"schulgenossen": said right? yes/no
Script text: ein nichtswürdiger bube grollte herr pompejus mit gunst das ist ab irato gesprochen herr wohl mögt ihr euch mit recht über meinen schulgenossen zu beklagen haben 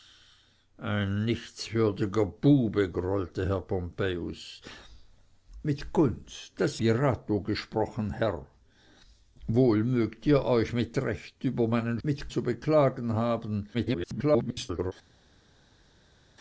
no